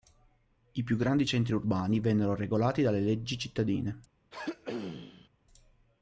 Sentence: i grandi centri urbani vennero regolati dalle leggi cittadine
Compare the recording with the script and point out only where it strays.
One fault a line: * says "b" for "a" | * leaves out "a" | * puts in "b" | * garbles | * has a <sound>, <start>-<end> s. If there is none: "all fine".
* puts in "più"
* has a throat clearing, 4.3-5.3 s